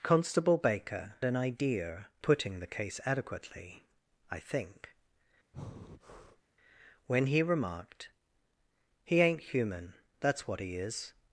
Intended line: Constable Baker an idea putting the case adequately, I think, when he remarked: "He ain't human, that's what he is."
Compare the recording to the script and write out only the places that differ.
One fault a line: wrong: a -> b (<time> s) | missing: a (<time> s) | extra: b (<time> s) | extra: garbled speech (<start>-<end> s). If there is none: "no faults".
no faults